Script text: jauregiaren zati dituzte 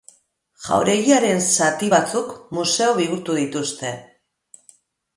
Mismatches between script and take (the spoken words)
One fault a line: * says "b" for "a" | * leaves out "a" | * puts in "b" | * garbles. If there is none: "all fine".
* puts in "batzuk museo bihurtu"